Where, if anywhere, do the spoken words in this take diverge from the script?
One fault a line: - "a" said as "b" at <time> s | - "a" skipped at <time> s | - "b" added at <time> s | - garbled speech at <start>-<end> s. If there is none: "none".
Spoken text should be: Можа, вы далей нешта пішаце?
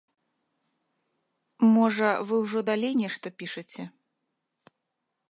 - "ўжо" added at 2.4 s